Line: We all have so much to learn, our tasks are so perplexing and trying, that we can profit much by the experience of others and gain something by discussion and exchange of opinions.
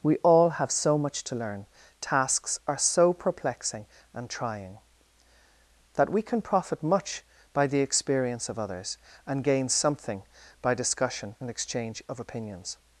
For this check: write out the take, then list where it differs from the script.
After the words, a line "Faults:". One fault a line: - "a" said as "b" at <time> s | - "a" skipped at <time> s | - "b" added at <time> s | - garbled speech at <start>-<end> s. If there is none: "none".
We all have so much to learn, tasks are so perplexing and trying, that we can profit much by the experience of others and gain something by discussion and exchange of opinions.
Faults:
- "our" skipped at 1.7 s